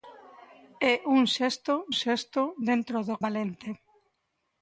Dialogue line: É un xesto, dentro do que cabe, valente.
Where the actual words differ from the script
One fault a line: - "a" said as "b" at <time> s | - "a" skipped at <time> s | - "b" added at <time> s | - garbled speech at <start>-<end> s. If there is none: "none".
- "xesto" added at 2.0 s
- "que cabe" skipped at 3.2 s